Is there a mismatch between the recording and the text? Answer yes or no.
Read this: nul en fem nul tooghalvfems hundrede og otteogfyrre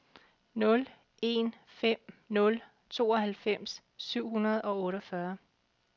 yes